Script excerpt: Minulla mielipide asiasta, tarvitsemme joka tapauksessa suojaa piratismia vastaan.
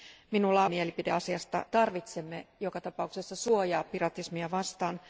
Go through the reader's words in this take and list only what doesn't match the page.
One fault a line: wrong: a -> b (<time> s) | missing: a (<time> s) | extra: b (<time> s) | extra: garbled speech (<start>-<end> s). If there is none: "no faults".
no faults